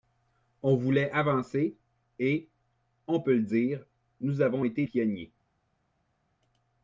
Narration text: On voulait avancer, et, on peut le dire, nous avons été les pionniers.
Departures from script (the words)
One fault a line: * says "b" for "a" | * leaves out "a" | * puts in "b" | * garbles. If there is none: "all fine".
* leaves out "les"